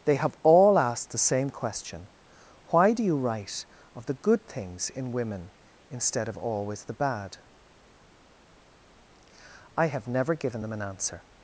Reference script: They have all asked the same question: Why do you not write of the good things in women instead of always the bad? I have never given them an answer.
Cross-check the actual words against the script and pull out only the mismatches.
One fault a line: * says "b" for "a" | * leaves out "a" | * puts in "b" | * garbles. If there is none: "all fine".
* leaves out "not"